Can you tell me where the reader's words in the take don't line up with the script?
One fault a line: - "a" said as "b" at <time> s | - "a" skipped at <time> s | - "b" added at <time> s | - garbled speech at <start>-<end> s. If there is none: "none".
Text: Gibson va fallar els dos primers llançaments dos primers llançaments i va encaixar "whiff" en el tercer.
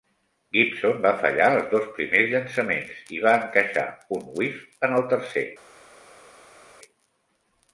- "dos primers llançaments" skipped at 3.0 s
- "un" added at 4.2 s